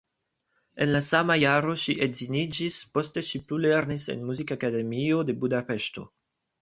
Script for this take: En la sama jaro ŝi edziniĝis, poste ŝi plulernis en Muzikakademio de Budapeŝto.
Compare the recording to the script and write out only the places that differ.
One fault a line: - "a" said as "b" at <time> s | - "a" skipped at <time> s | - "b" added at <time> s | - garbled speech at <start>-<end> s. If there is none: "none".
none